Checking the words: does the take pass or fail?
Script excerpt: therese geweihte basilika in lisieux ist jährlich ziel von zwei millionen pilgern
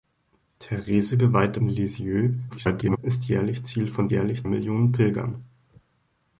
fail